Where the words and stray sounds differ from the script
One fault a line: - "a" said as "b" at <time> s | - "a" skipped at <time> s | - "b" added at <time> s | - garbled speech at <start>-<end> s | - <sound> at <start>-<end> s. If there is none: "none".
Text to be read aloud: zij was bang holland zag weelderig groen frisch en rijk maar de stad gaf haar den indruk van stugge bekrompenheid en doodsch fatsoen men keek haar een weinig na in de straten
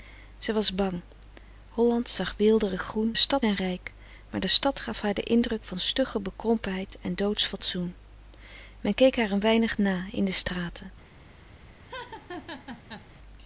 - "frisch" said as "stad" at 3.1 s
- laugh at 11.8-13.1 s